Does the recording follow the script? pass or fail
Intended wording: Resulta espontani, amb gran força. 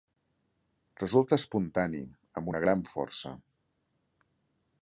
fail